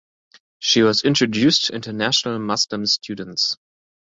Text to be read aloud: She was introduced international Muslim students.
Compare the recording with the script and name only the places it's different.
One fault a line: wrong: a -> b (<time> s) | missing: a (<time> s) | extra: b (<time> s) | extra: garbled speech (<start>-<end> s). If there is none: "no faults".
no faults